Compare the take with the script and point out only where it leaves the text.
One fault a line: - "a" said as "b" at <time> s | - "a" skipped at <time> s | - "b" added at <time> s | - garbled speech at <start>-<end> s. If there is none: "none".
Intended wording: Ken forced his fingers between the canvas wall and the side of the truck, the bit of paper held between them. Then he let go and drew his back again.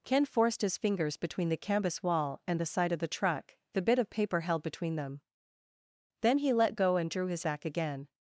none